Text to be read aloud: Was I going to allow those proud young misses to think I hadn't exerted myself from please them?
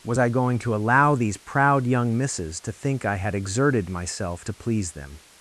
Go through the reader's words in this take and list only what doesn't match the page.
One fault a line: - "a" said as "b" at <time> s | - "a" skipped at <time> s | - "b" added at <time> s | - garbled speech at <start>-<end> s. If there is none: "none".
- "those" said as "these" at 1.1 s
- "hadn't" said as "had" at 3.2 s
- "from" said as "to" at 4.4 s